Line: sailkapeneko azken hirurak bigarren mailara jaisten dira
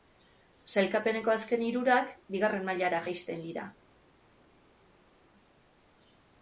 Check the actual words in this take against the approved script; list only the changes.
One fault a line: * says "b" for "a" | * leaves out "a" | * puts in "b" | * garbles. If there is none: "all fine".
all fine